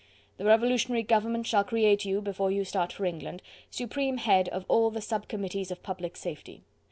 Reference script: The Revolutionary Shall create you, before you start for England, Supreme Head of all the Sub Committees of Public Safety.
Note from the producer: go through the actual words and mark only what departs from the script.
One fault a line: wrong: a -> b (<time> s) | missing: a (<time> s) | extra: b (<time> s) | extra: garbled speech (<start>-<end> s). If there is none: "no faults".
extra: Government (1.0 s)